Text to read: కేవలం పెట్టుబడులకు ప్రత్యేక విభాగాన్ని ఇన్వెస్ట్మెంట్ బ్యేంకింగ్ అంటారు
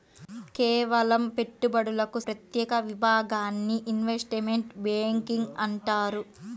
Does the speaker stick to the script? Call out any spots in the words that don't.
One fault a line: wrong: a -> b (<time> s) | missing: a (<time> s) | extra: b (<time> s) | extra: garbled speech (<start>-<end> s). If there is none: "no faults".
no faults